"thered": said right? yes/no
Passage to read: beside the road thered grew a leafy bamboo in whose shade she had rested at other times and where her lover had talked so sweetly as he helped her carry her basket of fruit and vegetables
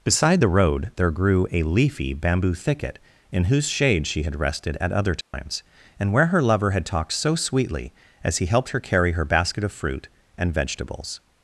no